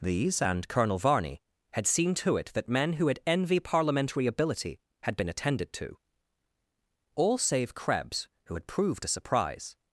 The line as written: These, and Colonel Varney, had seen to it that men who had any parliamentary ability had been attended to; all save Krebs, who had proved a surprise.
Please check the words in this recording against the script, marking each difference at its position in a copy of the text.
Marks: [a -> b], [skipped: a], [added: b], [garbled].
These, and Colonel Varney, had seen to it that men who had [any -> envy] parliamentary ability had been attended to; all save Krebs, who had proved a surprise.